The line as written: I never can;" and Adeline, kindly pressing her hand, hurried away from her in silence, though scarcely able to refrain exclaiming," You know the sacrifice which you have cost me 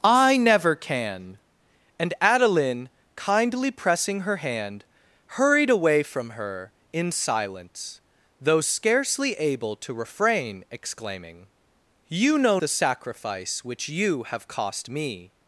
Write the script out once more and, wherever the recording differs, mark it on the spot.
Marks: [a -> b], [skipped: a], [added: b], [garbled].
I never can;" and Adeline, kindly pressing her hand, hurried away from her in silence, though scarcely able to refrain exclaiming," You know the sacrifice which you have cost me